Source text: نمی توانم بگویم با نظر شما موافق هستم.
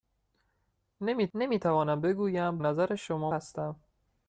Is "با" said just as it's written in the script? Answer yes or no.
no